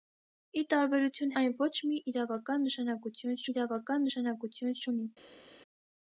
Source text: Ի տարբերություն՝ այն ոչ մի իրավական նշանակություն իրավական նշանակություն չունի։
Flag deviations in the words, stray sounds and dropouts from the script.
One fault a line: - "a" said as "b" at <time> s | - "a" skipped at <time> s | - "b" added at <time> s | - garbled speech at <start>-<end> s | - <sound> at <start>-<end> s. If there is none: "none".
none